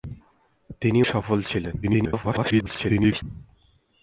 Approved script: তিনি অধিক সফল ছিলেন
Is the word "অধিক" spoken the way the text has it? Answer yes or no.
no